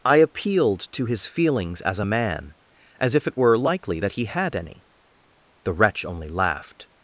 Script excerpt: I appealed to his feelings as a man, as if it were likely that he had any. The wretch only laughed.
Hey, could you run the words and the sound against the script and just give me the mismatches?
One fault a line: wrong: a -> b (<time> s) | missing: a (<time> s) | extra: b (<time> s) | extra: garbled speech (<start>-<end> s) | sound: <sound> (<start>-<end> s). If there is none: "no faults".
no faults